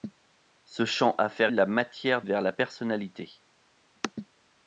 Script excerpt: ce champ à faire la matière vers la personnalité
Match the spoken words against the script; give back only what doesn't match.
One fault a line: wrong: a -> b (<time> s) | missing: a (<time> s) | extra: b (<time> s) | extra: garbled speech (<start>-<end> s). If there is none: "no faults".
no faults